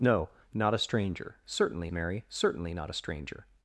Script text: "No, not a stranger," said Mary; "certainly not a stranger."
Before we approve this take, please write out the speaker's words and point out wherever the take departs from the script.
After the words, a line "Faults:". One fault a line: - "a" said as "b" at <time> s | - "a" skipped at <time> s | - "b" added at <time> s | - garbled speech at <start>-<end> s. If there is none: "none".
"No, not a stranger," certainly Mary; "certainly not a stranger."
Faults:
- "said" said as "certainly" at 1.5 s